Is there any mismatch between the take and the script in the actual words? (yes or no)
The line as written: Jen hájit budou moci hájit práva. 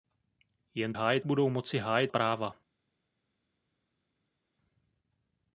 no